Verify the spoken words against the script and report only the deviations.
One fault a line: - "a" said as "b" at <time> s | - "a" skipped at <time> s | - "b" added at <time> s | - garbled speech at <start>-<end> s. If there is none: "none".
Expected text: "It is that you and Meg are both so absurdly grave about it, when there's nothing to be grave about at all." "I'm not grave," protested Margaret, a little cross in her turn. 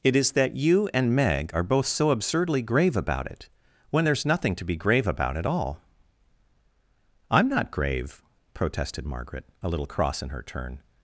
none